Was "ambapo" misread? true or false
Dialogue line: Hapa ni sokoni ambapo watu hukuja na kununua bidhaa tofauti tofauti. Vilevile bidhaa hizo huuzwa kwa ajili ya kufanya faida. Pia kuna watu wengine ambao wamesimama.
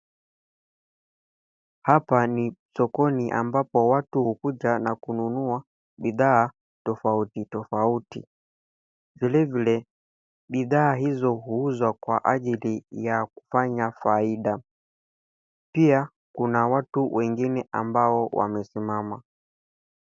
false